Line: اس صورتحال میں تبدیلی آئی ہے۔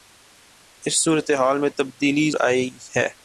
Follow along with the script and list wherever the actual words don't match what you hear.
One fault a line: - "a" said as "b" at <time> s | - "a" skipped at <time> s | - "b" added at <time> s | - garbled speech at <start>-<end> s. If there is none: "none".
none